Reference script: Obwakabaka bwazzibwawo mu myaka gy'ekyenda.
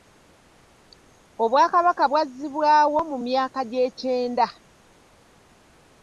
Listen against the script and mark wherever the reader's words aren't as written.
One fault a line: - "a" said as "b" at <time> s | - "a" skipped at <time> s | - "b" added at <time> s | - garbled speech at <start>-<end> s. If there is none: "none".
none